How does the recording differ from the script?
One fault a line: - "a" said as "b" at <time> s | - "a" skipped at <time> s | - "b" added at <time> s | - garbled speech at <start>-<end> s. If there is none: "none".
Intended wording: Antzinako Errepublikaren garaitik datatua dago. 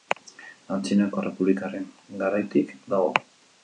- "datatua" skipped at 2.8 s